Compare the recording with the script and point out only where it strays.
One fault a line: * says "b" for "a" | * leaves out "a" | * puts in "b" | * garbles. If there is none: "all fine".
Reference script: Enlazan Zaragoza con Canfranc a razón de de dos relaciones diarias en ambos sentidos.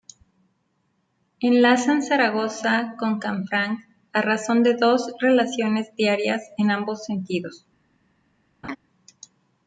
* leaves out "de"